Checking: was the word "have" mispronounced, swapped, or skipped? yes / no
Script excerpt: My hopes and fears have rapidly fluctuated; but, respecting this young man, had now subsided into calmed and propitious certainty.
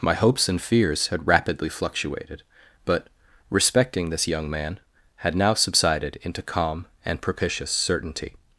yes